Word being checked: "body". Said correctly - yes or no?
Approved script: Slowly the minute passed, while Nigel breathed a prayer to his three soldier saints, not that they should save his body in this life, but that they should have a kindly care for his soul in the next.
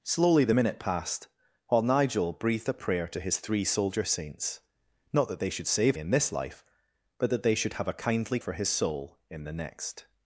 no